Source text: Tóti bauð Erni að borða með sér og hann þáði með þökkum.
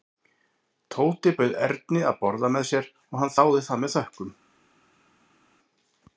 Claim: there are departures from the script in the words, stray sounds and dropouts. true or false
true